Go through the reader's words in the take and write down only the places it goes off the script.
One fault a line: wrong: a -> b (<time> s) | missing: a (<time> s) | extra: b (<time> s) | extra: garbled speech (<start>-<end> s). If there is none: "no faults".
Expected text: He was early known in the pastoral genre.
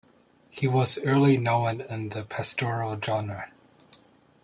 no faults